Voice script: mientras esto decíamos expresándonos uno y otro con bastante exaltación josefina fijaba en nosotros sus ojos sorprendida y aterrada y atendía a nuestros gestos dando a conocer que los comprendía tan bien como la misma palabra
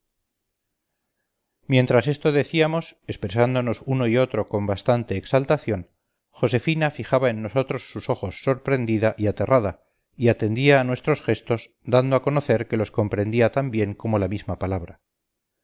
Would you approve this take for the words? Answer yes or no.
yes